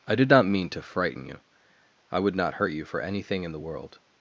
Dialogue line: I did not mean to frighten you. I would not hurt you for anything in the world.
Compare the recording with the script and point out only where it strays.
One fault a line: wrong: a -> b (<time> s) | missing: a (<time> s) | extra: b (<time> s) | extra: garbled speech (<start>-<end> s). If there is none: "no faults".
no faults